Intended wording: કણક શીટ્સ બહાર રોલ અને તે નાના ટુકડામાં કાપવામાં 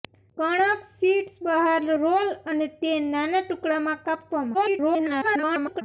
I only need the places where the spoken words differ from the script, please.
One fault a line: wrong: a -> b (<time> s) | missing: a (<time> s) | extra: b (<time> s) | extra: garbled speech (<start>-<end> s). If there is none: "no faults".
extra: garbled speech (4.5-5.8 s)